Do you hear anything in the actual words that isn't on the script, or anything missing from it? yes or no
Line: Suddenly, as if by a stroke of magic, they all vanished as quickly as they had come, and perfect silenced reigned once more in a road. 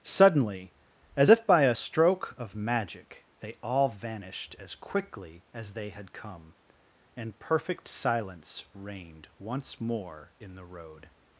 yes